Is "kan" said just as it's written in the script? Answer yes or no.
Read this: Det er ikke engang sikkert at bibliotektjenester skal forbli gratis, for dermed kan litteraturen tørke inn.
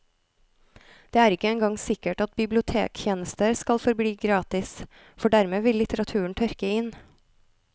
no